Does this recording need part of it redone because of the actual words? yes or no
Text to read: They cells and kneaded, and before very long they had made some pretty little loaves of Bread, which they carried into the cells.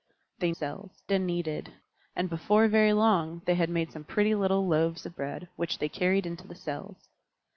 no